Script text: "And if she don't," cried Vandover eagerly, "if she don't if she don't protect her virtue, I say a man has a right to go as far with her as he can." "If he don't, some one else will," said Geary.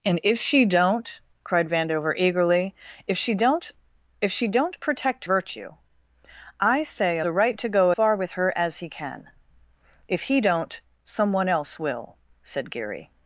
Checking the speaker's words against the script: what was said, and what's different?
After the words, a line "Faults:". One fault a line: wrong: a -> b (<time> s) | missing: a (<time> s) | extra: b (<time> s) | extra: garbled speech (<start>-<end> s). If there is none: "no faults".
"And if she don't," cried Vandover eagerly, "if she don't if she don't protect virtue, I say a a right to go far with her as he can." "If he don't, some one else will," said Geary.
Faults:
missing: her (5.2 s)
missing: man has (7.2 s)
missing: as (7.9 s)